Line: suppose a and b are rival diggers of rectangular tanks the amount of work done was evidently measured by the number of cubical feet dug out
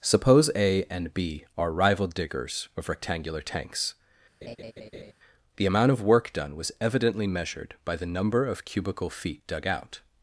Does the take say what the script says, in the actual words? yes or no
yes